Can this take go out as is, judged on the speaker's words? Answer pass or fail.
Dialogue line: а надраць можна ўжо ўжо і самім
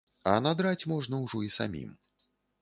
fail